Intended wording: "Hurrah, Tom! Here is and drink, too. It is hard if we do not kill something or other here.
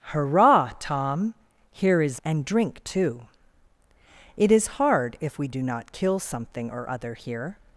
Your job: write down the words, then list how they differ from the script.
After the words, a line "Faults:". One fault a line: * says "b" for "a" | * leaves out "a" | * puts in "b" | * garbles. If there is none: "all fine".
"Hurrah, Tom! Here is and drink, too. It is hard if we do not kill something or other here.
Faults:
all fine